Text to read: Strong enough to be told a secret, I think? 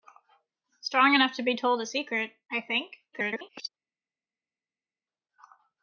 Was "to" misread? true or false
false